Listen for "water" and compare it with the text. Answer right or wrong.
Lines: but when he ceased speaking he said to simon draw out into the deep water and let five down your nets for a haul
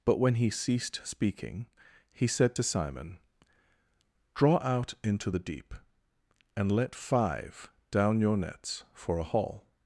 wrong